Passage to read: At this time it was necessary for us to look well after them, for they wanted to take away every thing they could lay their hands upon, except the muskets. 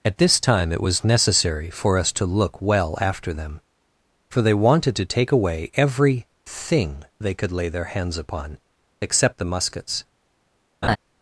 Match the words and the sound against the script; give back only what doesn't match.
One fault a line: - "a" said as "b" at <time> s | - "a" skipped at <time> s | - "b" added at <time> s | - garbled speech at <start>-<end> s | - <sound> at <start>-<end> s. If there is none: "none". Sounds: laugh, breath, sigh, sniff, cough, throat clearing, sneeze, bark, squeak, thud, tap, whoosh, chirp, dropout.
- laugh at 10.8-11.0 s